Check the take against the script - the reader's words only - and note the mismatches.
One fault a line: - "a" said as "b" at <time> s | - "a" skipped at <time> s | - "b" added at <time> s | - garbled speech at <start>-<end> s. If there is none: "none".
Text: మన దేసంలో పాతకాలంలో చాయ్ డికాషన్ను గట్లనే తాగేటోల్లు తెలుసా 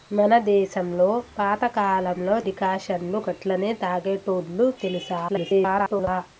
- "చాయ్" skipped at 2.4 s
- garbled speech at 5.3-6.1 s